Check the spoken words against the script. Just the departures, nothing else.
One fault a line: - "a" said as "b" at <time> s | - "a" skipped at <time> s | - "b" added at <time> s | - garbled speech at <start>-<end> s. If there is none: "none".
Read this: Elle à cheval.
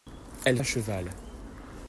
none